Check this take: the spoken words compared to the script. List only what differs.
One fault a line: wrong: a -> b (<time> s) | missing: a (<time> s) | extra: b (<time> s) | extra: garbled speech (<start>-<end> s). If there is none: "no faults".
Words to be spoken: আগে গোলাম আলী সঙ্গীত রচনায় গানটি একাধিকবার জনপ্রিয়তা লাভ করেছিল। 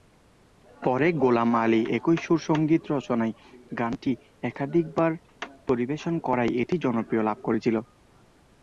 wrong: আগে -> পরে (0.8 s)
extra: একই সুর (2.0 s)
extra: পরিবেশন করায় এটি (5.7 s)